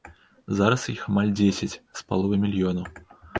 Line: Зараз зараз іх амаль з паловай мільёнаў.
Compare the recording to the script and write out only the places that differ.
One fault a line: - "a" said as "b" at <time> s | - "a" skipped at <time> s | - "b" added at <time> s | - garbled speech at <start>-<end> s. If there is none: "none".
- "зараз" skipped at 0.8 s
- "дзесяць" added at 1.4 s